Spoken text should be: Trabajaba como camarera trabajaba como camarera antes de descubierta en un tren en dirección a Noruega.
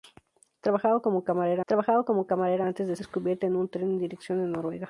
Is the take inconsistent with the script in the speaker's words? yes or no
no